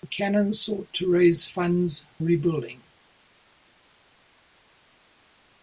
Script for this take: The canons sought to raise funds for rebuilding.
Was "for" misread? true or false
true